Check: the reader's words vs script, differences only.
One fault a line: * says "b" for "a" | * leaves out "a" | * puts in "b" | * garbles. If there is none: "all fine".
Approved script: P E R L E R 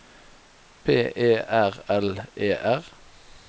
all fine